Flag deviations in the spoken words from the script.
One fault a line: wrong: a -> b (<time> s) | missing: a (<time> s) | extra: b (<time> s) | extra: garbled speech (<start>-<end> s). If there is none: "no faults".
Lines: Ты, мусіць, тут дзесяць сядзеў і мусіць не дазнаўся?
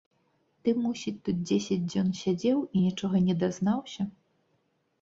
extra: дзён (1.9 s)
wrong: мусіць -> нічога (2.9 s)